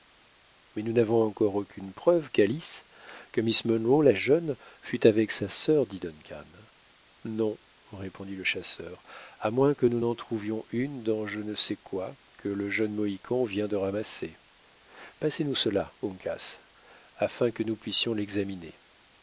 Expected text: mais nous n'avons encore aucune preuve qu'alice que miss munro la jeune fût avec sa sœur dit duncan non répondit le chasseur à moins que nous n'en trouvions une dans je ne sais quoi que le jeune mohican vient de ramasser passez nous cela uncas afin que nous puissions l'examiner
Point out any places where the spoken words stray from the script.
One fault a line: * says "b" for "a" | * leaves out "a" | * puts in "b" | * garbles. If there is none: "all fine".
all fine